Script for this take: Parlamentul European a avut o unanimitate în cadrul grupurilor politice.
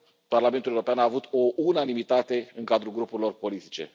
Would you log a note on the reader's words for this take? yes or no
no